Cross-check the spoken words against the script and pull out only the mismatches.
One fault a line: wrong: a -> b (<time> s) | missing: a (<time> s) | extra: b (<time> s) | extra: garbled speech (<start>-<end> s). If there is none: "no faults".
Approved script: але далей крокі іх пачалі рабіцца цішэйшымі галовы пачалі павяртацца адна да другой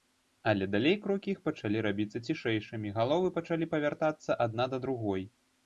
no faults